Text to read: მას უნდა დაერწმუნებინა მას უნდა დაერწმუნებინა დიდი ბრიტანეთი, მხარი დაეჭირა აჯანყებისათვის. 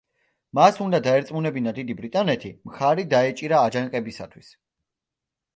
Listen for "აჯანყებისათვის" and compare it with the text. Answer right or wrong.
right